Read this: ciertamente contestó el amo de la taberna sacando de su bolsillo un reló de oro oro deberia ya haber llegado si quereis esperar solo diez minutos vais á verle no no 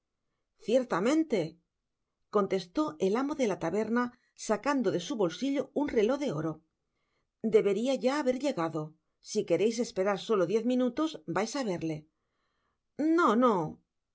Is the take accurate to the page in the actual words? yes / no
no